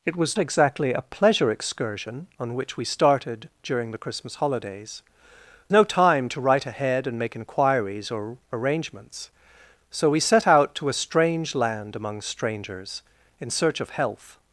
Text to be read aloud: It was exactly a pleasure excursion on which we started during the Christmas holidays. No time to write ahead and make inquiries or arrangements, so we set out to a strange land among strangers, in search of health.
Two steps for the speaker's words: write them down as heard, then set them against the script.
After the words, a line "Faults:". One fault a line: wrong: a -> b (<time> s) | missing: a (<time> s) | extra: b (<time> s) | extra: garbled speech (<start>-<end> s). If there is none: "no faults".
It was exactly a pleasure excursion on which we started during the Christmas holidays. No time to write ahead and make inquiries or arrangements, so we set out to a strange land among strangers, in search of health.
Faults:
no faults